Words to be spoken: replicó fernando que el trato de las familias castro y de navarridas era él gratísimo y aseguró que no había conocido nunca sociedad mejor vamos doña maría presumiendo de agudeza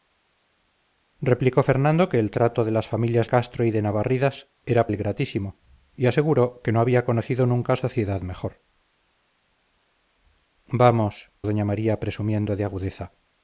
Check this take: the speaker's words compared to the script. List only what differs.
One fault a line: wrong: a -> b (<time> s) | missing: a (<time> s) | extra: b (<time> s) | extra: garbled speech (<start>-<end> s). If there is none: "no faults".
no faults